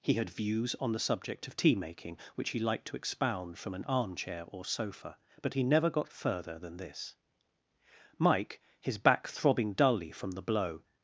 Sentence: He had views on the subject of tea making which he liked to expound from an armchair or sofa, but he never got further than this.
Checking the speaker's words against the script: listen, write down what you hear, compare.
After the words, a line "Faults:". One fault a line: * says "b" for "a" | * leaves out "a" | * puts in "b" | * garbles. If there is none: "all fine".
He had views on the subject of tea making which he liked to expound from an armchair or sofa, but he never got further than this. Mike, his back throbbing dully from the blow
Faults:
* puts in "Mike his back throbbing dully from the blow"